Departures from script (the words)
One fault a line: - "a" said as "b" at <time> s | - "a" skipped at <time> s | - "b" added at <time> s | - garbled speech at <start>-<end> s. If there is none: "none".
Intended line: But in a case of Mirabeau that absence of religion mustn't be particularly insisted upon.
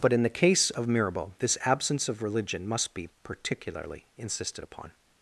- "a" said as "the" at 0.2 s
- "that" said as "this" at 1.4 s
- "mustn't" said as "must" at 2.7 s